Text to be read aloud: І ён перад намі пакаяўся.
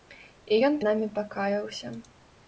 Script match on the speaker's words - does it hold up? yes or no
no